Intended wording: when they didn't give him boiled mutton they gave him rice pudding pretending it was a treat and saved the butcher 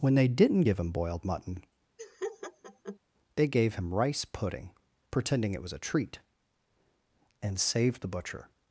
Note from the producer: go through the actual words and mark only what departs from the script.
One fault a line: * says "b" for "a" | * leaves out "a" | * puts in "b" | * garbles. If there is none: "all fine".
all fine